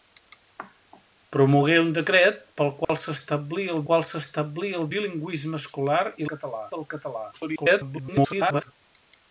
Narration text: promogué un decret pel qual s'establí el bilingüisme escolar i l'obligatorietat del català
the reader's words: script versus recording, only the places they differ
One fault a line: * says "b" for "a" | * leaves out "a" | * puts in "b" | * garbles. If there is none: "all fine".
* puts in "qual s'establí el"
* says "català" for "l'obligatorietat"
* garbles